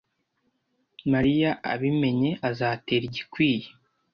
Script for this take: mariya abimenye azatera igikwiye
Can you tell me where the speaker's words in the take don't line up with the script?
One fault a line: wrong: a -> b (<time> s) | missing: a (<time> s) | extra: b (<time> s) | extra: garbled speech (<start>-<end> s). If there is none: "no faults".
no faults